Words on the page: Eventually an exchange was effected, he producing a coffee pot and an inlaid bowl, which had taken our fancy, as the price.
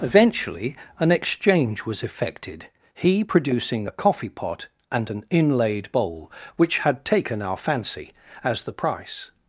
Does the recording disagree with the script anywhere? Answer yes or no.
no